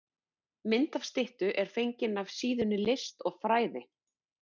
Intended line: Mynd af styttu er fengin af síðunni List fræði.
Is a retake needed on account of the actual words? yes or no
yes